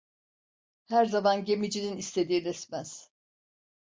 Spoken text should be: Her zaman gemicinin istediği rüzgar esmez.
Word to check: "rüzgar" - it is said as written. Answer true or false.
false